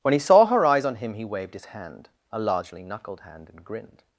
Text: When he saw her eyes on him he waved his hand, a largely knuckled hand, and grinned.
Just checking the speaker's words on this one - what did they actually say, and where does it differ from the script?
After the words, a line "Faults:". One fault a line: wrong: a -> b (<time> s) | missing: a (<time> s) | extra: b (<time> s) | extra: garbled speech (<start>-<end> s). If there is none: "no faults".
When he saw her eyes on him he waved his hand, a largely knuckled hand, and grinned.
Faults:
no faults